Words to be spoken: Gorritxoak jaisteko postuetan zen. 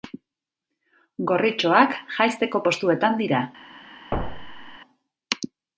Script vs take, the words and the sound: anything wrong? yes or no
yes